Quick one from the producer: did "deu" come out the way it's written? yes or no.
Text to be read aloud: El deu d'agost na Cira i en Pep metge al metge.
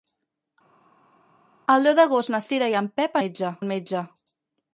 yes